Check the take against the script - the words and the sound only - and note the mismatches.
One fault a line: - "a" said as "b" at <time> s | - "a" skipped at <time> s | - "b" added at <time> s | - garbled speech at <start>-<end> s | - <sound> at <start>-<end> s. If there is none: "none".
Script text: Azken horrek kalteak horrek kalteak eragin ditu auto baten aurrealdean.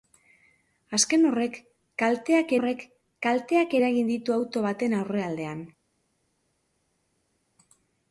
none